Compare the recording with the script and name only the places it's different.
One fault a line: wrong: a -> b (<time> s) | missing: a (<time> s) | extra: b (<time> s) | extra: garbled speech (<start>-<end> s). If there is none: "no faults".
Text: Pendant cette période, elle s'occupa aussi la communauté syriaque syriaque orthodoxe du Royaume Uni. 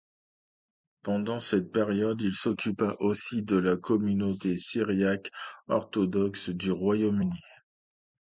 wrong: elle -> il (2.2 s)
extra: de (3.4 s)
missing: syriaque (5.3 s)